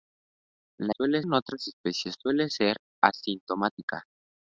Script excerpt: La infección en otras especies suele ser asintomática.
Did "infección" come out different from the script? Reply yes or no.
yes